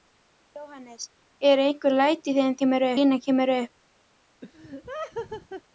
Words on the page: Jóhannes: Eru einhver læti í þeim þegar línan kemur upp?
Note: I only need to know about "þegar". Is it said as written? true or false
false